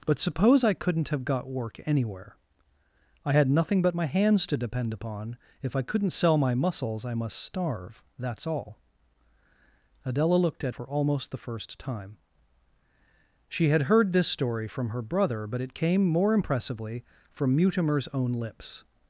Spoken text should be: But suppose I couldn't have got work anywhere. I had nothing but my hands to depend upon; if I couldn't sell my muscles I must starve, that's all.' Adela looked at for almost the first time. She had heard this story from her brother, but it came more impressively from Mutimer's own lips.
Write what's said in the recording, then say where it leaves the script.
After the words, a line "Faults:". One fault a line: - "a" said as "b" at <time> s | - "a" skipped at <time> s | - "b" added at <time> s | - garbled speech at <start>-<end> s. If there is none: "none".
But suppose I couldn't have got work anywhere. I had nothing but my hands to depend upon; if I couldn't sell my muscles I must starve, that's all.' Adela looked at for almost the first time. She had heard this story from her brother, but it came more impressively from Mutimer's own lips.
Faults:
none